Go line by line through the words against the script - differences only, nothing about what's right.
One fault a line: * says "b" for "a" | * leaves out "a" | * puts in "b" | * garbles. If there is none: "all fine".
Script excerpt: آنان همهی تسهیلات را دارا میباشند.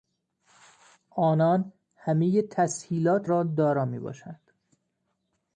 all fine